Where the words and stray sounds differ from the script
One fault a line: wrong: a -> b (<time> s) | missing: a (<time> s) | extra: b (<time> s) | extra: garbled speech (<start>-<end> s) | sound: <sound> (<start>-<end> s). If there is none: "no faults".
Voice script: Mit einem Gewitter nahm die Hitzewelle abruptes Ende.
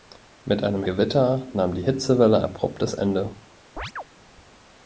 sound: chirp (3.8-4.0 s)